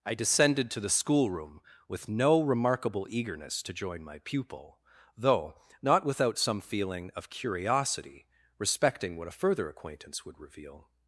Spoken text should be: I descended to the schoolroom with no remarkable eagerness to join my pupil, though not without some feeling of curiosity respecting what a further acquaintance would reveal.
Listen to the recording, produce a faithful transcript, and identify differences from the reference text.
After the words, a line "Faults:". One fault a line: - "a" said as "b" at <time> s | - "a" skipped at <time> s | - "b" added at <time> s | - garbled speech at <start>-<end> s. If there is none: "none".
I descended to the schoolroom with no remarkable eagerness to join my pupil, though not without some feeling of curiosity respecting what a further acquaintance would reveal.
Faults:
none